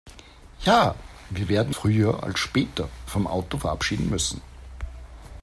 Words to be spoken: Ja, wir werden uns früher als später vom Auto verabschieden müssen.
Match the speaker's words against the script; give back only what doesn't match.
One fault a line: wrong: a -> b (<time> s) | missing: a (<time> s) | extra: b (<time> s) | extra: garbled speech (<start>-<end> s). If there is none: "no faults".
missing: uns (1.8 s)